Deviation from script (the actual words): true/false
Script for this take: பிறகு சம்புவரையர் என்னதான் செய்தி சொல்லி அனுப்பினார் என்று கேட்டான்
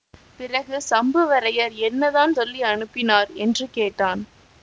true